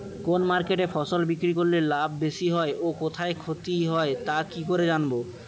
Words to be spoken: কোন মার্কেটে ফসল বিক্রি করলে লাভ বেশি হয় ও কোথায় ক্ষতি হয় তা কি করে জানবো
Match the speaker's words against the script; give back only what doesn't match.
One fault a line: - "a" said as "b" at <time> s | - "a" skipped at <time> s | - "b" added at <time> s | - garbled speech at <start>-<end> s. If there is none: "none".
none